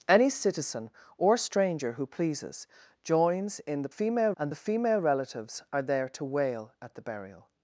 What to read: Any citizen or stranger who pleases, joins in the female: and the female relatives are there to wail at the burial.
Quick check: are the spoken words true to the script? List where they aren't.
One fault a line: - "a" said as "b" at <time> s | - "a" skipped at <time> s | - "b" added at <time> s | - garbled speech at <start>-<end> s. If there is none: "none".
none